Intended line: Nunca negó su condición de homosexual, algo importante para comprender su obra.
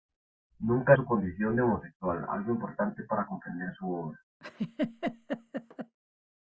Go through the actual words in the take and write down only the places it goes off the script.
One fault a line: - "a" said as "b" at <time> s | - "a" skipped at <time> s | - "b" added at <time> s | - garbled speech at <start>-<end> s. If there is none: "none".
- "negó" skipped at 0.9 s